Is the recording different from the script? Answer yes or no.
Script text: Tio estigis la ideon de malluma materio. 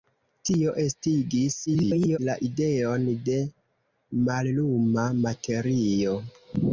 yes